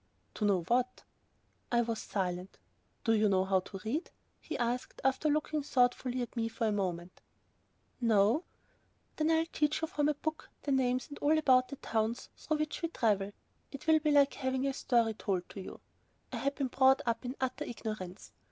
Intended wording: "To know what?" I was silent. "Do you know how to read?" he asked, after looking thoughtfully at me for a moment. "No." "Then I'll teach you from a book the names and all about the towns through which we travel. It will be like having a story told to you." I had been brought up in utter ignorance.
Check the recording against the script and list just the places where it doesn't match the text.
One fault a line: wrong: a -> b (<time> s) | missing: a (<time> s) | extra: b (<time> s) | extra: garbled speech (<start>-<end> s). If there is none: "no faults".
no faults